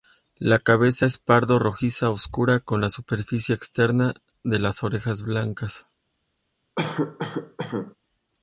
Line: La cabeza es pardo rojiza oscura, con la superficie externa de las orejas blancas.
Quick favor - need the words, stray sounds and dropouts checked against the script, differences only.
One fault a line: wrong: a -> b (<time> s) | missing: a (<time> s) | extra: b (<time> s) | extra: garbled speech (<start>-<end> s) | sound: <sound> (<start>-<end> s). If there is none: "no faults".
sound: cough (6.8-7.9 s)